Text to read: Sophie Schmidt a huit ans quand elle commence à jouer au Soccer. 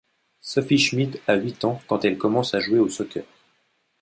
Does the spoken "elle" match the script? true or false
true